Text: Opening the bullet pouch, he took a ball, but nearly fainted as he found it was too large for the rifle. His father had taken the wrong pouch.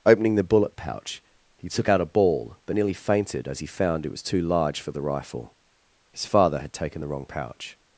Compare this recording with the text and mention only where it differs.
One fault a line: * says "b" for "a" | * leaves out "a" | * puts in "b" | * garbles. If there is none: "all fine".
* puts in "out"